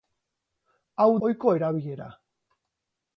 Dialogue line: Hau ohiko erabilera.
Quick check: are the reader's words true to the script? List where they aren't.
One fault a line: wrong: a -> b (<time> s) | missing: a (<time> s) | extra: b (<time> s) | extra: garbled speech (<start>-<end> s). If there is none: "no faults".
no faults